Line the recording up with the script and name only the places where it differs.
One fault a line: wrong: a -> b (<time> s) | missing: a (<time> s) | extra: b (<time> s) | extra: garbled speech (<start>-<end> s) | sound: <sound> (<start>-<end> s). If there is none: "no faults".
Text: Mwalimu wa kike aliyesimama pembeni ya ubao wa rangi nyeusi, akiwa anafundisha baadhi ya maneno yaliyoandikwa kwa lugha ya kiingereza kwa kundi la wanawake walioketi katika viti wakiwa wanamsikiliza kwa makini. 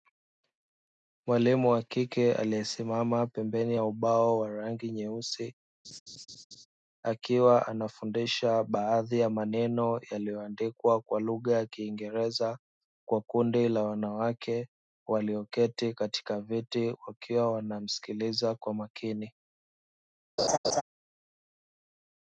sound: laugh (5.8-6.7 s)
sound: laugh (20.4-20.8 s)